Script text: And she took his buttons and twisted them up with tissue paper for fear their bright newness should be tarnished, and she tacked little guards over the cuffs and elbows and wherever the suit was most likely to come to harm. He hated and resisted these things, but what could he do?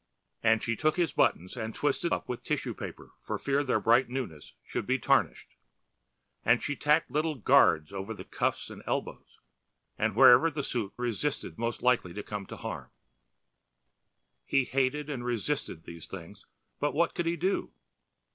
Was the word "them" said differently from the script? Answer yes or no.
yes